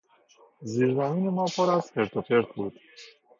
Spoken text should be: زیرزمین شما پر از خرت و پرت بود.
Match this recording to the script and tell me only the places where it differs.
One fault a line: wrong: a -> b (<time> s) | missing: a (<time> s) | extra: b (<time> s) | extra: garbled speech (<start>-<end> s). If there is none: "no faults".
wrong: شما -> ما (1.3 s)